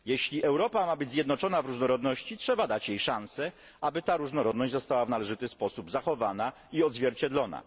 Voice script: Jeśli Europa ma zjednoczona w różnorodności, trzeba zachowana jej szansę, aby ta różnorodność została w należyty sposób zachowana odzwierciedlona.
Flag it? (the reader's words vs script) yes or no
yes